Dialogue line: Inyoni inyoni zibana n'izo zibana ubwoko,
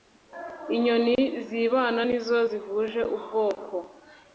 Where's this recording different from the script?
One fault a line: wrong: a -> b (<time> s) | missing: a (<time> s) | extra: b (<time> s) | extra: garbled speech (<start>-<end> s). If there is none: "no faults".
missing: inyoni (1.1 s)
wrong: zibana -> zihuje (2.5 s)